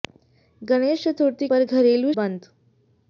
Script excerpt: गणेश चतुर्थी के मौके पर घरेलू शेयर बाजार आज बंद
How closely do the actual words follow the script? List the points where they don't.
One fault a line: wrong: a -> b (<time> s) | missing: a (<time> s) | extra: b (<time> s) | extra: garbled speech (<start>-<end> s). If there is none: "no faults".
missing: के मौके (1.5 s)
missing: शेयर बाजार आज (2.1 s)